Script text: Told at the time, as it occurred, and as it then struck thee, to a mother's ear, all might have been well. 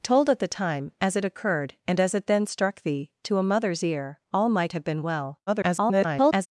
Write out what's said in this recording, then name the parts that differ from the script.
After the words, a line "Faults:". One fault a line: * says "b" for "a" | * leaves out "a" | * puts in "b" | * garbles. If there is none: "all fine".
Told at the time, as it occurred, and as it then struck thee, to a mother's ear, all might have been well. [garbled]
Faults:
* garbles